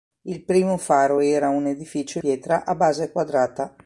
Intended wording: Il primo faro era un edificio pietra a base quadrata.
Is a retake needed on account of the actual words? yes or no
no